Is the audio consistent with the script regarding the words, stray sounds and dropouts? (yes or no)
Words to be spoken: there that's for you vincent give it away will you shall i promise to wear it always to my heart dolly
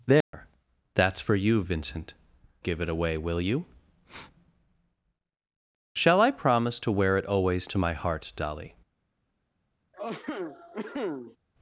no